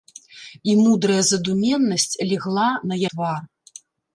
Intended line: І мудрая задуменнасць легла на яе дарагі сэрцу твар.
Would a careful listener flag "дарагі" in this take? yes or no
yes